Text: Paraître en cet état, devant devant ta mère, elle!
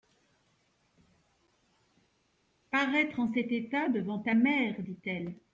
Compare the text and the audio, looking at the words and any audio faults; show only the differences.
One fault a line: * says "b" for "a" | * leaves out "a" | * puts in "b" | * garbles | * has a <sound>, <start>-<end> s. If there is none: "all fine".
* leaves out "devant"
* puts in "dit"